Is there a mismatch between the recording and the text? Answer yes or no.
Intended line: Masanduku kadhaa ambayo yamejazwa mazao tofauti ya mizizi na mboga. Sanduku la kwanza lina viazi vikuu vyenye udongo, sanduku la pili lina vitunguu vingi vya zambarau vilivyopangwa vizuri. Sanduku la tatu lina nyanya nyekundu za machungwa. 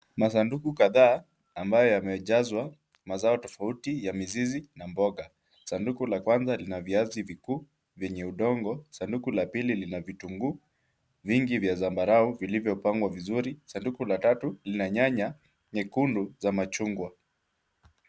no